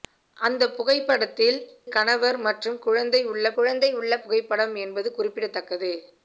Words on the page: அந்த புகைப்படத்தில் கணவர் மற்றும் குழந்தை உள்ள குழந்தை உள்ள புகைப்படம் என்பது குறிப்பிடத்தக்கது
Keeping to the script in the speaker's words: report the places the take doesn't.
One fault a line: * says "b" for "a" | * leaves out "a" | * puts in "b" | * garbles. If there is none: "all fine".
all fine